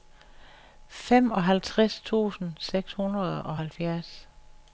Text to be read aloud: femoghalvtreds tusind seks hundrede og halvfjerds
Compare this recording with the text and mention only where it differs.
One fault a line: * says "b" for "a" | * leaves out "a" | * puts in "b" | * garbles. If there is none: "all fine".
all fine